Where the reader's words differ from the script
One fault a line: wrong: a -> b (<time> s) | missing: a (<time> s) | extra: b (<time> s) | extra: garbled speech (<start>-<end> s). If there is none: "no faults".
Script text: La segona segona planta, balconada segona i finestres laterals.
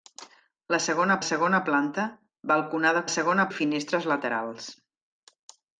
no faults